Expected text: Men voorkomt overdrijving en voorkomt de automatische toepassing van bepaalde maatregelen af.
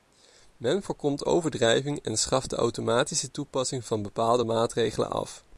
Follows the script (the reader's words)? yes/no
no